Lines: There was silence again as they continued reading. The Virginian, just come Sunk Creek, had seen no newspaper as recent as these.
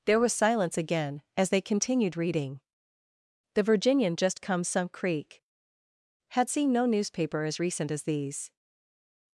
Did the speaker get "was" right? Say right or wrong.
right